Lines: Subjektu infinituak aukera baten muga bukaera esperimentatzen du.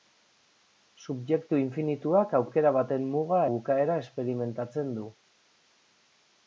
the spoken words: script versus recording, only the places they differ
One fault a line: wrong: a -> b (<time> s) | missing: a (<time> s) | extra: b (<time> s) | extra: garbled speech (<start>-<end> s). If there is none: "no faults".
no faults